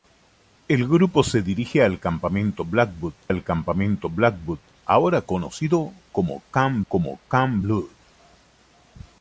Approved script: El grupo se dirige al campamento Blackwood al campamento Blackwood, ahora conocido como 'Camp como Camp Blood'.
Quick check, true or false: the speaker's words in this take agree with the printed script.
true